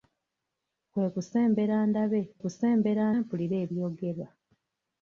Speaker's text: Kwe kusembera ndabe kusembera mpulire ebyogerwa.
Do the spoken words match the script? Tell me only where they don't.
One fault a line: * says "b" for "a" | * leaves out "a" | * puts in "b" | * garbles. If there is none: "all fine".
all fine